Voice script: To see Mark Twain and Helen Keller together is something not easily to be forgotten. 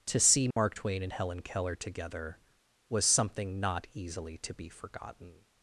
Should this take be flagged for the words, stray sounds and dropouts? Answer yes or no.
yes